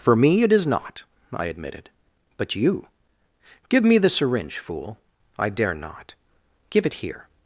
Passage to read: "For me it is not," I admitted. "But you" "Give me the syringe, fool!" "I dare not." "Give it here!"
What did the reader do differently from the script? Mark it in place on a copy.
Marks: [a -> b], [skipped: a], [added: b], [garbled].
"For me it is not," I admitted. "But you" "Give me the syringe, fool!" "I dare not." "Give it here!"